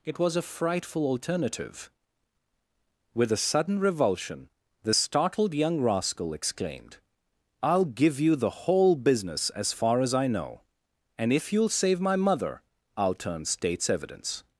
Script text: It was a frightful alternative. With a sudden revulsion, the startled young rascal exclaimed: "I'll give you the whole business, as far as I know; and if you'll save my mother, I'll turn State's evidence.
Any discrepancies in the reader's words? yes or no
no